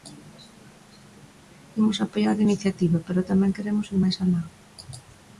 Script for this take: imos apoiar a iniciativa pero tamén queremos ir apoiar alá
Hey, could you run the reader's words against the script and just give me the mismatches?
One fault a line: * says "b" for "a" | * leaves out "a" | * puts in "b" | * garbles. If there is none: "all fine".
* says "máis" for "apoiar"